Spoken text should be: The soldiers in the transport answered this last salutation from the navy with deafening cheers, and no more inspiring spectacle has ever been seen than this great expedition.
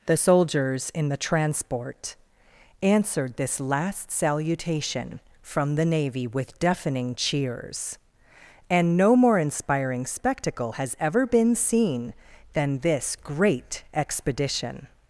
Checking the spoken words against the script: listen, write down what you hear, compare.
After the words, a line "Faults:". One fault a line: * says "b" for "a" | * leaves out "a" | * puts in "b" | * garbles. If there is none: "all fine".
The soldiers in the transport answered this last salutation from the navy with deafening cheers, and no more inspiring spectacle has ever been seen than this great expedition.
Faults:
all fine